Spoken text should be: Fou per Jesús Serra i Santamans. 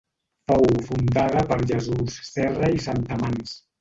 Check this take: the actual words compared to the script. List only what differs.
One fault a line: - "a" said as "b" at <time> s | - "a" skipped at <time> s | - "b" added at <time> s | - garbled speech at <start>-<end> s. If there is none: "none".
- "fundada" added at 0.9 s